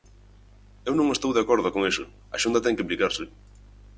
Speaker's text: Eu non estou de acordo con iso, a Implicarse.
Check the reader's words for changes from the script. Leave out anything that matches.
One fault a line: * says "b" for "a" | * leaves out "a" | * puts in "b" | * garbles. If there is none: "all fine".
* puts in "Xunta ten que"